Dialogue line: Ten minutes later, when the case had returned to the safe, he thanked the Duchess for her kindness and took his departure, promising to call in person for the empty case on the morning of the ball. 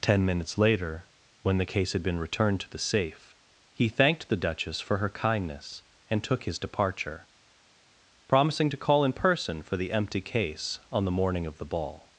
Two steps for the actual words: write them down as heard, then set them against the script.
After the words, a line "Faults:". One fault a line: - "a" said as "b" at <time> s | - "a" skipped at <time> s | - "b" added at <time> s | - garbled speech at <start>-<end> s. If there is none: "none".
Ten minutes later, when the case had been returned to the safe, he thanked the Duchess for her kindness and took his departure, promising to call in person for the empty case on the morning of the ball.
Faults:
- "been" added at 2.0 s